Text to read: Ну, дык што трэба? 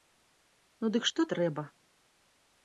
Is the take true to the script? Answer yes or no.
yes